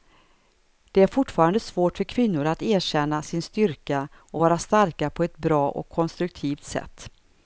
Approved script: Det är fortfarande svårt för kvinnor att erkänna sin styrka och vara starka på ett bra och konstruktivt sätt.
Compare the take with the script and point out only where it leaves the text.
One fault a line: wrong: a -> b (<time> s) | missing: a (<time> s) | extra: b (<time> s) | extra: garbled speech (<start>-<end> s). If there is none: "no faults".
no faults